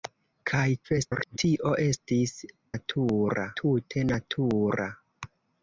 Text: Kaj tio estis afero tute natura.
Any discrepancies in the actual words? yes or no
yes